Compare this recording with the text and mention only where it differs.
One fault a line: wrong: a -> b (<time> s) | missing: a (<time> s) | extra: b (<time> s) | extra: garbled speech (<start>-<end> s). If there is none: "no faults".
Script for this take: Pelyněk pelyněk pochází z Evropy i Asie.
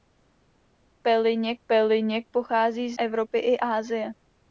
no faults